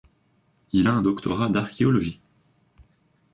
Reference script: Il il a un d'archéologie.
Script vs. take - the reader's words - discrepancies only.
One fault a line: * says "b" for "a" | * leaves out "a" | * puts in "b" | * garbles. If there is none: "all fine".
* leaves out "il"
* puts in "doctorat"